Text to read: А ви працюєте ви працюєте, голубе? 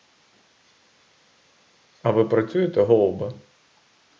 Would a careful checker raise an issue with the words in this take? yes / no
yes